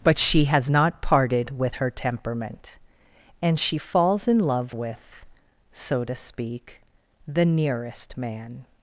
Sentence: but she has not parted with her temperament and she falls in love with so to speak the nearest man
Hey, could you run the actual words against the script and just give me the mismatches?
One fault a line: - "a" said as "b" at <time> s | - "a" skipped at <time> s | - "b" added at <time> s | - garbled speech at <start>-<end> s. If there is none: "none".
none